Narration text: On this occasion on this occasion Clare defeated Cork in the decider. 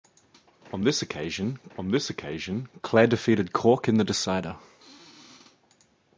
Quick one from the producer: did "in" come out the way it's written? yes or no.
yes